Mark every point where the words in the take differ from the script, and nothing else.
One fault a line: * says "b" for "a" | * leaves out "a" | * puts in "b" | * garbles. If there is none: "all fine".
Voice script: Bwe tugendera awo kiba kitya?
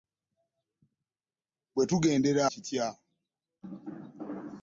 * leaves out "awo kiba"